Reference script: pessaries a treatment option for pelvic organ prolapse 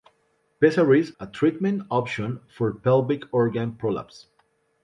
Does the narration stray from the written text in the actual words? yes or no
no